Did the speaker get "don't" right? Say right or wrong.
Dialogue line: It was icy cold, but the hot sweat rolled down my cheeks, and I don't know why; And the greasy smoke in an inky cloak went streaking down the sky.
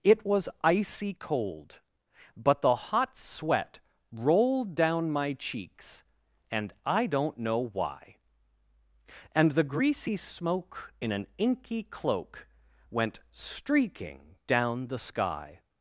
right